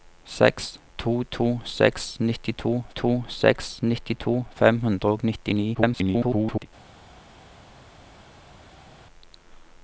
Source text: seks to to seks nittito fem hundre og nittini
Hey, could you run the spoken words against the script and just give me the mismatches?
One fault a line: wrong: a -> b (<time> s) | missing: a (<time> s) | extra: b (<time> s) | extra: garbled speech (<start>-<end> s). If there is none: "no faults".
extra: to seks nittito (3.0 s)
extra: garbled speech (5.7-6.7 s)